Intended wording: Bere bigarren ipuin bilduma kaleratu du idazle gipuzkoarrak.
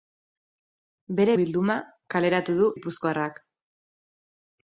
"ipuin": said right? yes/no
no